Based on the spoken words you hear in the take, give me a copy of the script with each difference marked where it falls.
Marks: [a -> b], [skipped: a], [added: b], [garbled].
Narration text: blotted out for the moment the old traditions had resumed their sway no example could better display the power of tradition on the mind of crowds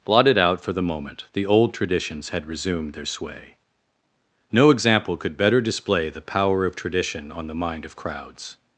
blotted out for the moment the old traditions had resumed their sway no example could better display the power of tradition on the mind of crowds